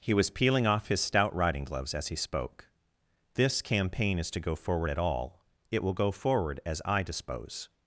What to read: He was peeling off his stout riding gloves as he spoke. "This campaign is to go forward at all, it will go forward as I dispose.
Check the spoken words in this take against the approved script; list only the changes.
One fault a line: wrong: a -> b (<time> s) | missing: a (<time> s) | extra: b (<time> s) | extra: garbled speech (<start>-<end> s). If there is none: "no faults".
no faults